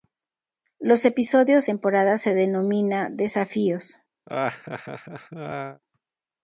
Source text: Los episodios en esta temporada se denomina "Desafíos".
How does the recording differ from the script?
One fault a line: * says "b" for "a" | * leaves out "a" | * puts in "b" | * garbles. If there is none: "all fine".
* leaves out "en esta"